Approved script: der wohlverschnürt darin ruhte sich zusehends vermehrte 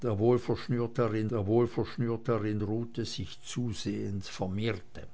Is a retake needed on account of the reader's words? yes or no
yes